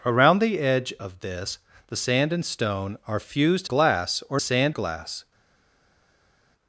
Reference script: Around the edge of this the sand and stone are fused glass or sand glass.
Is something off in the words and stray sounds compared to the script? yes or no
no